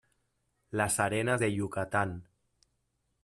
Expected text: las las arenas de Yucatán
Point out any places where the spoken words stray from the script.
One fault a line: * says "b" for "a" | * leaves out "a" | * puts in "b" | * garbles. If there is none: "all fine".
* leaves out "las"